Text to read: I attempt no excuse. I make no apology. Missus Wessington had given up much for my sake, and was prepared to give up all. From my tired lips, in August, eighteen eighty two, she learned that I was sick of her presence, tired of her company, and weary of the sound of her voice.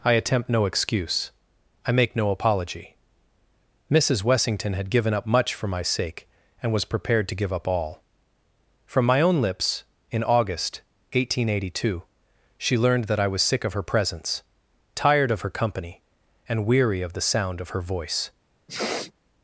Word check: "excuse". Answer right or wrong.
right